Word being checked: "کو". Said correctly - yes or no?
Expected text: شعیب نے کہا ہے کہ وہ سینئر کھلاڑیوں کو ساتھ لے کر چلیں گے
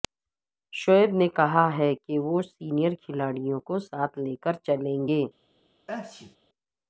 yes